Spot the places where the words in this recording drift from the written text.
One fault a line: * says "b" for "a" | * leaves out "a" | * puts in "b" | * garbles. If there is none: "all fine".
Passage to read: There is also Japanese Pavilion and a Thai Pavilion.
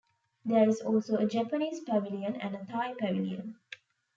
* puts in "a"